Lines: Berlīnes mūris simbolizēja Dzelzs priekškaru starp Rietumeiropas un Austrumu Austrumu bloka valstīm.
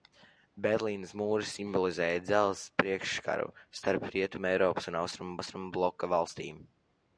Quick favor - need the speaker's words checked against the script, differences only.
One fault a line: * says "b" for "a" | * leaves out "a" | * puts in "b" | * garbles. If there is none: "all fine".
all fine